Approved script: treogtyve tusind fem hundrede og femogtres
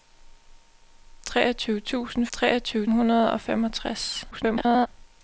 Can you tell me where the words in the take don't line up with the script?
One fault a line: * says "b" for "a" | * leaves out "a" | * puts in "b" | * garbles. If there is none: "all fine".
* says "treogtyve" for "fem"
* garbles